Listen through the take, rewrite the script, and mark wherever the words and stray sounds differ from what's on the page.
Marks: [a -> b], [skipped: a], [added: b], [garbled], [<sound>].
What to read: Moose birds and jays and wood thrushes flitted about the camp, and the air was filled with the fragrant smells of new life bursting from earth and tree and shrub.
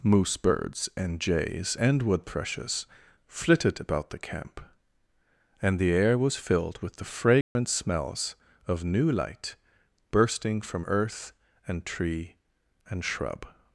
Moose birds and jays and wood thrushes flitted about the camp, and the air was filled with the fragrant [dropout] smells of new [life -> light] bursting from earth and tree and shrub.